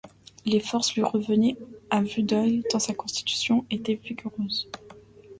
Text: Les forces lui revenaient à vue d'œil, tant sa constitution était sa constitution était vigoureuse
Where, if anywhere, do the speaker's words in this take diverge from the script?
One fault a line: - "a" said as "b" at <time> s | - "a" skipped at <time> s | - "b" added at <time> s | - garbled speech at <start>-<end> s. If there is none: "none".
- "sa constitution était" skipped at 3.9 s